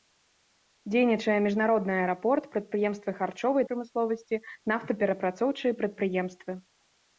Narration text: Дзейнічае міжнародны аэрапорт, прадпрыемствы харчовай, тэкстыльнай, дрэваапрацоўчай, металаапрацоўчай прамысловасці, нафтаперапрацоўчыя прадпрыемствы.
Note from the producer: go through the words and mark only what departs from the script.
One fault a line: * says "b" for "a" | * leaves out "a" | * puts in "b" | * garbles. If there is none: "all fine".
* leaves out "тэкстыльнай дрэваапрацоўчай металаапрацоўчай"